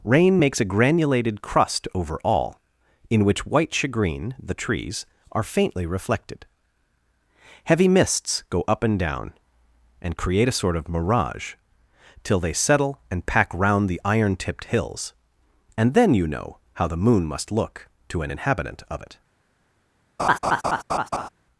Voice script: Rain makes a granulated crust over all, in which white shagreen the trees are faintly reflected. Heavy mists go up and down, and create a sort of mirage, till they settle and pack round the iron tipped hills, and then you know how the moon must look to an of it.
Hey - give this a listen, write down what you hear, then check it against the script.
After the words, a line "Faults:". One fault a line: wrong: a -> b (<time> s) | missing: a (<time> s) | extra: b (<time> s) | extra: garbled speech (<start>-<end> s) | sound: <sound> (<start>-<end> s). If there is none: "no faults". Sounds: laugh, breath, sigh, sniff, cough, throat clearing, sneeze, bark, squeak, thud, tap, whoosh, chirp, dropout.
Rain makes a granulated crust over all, in which white shagreen the trees are faintly reflected. Heavy mists go up and down, and create a sort of mirage, till they settle and pack round the iron tipped hills, and then you know how the moon must look to an inhabitant of it.
Faults:
extra: inhabitant (18.3 s)
sound: laugh (20.2-21.3 s)